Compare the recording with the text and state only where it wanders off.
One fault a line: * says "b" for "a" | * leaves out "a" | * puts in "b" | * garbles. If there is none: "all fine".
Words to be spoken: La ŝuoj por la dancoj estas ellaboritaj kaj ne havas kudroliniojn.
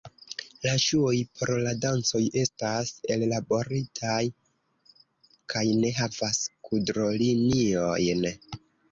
all fine